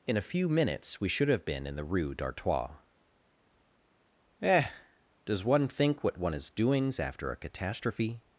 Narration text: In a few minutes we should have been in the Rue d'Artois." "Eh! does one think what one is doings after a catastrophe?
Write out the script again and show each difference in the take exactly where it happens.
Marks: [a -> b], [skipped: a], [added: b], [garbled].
In a few minutes we should have been in the Rue d'Artois." "Eh! does one think what one is doings after a catastrophe?